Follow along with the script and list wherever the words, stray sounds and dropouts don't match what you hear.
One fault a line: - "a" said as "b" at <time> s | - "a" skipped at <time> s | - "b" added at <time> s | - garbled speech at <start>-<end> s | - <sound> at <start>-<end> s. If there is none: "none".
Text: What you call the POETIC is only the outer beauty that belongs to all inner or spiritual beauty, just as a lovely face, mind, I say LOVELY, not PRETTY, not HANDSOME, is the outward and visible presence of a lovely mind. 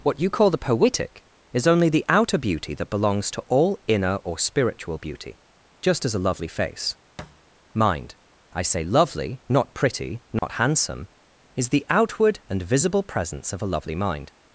- thud at 7.2-7.4 s
- dropout at 10.4-10.4 s